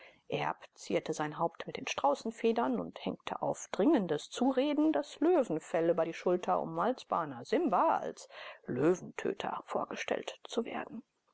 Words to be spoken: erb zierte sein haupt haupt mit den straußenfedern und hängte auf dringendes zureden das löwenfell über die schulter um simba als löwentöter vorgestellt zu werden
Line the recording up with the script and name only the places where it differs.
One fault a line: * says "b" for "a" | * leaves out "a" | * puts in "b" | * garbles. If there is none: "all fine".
* leaves out "haupt"
* puts in "als bana"